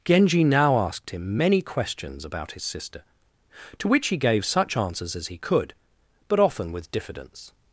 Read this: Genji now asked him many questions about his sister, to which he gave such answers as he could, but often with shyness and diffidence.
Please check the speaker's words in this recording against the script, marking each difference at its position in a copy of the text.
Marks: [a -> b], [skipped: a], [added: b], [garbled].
Genji now asked him many questions about his sister, to which he gave such answers as he could, but often with [skipped: shyness and] diffidence.